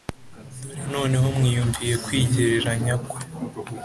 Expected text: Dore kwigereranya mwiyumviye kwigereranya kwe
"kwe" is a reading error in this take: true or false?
false